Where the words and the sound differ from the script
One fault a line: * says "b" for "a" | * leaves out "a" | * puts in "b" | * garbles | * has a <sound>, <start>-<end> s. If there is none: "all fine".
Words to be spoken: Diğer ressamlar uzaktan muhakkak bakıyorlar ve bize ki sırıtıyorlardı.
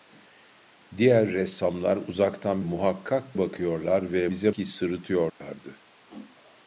* has a dropout, 5.3-5.4 s